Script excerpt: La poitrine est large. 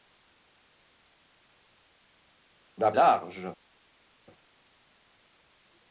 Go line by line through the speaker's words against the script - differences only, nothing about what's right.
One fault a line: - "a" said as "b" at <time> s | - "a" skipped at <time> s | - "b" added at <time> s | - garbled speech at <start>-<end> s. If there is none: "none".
- "poitrine est" skipped at 2.9 s